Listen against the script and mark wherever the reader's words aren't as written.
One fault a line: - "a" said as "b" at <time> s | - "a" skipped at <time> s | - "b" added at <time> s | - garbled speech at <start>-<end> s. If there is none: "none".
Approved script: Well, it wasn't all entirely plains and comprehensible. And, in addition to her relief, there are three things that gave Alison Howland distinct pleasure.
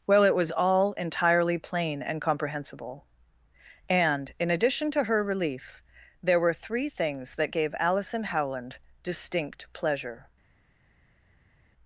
- "wasn't" said as "was" at 0.3 s
- "plains" said as "plain" at 1.6 s
- "are" said as "were" at 6.4 s